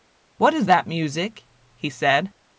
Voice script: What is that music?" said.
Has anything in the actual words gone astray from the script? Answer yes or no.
yes